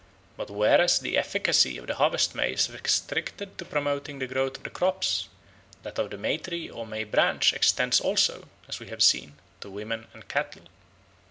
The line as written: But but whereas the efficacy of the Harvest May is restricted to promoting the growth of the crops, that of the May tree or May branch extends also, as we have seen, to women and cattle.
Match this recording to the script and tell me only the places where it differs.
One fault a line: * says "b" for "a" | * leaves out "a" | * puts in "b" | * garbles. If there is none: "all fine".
* leaves out "but"